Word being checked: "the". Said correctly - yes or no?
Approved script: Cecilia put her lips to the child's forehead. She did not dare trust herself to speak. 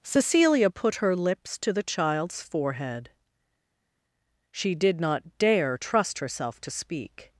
yes